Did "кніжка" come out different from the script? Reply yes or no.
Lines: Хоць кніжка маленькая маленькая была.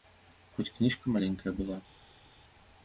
no